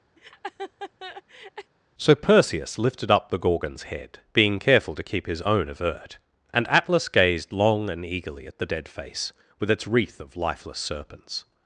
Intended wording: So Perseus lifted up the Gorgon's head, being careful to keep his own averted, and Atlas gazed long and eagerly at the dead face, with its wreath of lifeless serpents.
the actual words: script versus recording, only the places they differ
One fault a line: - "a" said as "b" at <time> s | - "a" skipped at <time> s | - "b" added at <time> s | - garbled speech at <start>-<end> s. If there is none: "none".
- "averted" said as "avert" at 5.7 s